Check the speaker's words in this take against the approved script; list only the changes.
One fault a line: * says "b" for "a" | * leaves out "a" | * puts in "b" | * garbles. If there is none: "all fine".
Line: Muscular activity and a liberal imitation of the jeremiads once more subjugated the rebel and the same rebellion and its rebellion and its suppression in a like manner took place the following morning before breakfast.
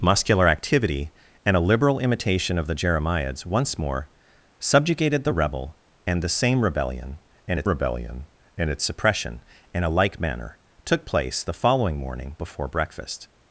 all fine